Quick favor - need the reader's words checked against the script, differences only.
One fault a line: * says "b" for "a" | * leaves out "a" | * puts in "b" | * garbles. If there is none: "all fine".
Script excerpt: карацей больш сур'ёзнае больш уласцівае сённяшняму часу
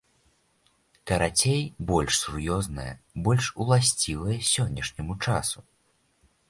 all fine